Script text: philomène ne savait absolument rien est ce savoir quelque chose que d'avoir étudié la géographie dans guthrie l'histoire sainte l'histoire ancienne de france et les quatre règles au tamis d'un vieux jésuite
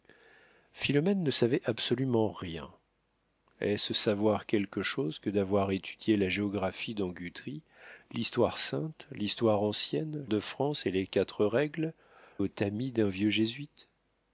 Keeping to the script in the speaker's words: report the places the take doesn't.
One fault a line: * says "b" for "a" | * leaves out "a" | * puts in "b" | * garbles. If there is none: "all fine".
all fine